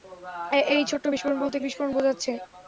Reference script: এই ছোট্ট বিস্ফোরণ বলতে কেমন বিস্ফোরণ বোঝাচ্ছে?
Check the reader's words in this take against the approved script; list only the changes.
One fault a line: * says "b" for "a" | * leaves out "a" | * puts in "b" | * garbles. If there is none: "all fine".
* leaves out "কেমন"